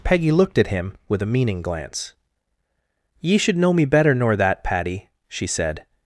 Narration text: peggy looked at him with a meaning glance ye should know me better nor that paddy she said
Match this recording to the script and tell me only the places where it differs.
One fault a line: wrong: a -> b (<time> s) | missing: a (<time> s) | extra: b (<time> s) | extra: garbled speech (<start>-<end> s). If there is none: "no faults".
no faults